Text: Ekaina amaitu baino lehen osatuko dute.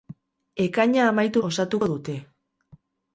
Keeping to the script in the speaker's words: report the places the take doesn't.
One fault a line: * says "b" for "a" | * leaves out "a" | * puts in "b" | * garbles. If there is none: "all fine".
* leaves out "baino lehen"